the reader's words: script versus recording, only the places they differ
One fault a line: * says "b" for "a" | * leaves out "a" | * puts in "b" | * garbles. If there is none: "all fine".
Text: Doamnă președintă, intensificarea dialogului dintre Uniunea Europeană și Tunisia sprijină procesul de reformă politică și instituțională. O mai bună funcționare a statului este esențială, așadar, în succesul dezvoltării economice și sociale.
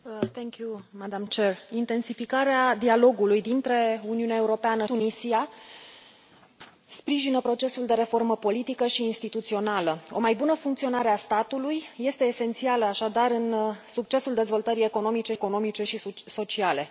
* leaves out "și"
* puts in "economice"